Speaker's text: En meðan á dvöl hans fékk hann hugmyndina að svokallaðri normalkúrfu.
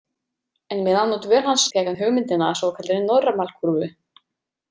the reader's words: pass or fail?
pass